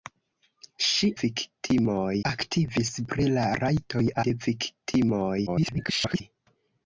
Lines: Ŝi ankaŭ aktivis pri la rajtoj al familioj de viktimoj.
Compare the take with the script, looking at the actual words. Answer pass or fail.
fail